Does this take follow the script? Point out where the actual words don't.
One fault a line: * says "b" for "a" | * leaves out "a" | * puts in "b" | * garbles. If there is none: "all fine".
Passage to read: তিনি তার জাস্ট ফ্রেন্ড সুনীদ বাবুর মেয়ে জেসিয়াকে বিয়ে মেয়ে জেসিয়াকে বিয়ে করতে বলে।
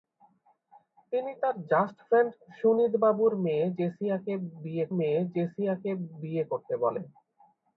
all fine